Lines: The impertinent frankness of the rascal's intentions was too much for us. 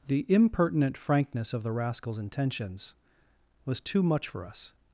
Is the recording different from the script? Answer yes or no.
no